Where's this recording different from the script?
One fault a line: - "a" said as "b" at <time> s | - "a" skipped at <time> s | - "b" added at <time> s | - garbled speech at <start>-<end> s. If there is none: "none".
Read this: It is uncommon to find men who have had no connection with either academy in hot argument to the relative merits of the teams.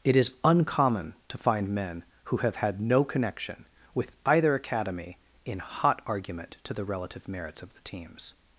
none